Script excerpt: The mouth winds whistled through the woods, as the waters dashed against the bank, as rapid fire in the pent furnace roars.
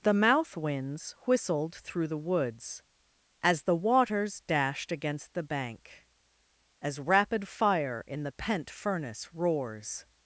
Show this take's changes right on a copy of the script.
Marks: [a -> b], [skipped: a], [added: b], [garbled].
The mouth winds whistled through the woods, as the waters dashed against the bank, as rapid fire in the pent furnace roars.